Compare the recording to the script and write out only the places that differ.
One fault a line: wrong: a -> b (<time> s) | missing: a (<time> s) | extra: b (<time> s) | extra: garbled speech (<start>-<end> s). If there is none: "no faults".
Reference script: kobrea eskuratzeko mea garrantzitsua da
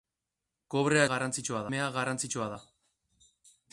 wrong: eskuratzeko -> garrantzitsua (1.1 s)